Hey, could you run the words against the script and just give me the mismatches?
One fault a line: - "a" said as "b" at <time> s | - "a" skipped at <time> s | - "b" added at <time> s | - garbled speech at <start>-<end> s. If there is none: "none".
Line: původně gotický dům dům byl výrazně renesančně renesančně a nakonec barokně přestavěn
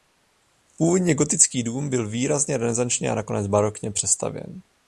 - "dům" skipped at 1.9 s
- "renesančně" skipped at 3.1 s